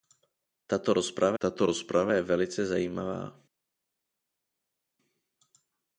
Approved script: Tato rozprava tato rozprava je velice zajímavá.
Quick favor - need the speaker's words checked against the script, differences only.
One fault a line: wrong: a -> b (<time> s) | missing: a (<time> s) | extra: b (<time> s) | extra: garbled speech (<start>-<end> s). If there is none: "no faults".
no faults